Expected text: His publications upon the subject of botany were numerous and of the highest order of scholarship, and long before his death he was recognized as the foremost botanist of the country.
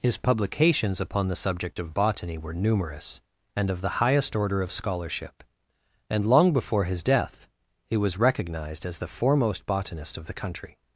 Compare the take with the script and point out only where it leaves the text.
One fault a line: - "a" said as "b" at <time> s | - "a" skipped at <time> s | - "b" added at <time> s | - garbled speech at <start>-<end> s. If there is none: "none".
none